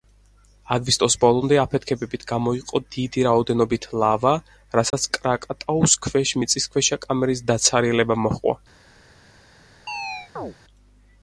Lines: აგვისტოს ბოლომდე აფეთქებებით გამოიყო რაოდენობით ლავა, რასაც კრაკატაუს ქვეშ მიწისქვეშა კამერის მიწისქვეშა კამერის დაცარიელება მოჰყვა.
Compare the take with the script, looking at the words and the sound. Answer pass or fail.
fail